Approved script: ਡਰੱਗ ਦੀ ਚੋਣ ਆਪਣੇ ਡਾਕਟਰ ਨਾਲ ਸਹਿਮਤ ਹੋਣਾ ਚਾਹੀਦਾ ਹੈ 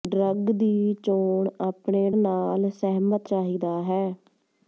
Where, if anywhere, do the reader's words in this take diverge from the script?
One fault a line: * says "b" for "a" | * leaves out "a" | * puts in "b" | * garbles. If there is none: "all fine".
* leaves out "ਡਾਕਟਰ"
* leaves out "ਹੋਣਾ"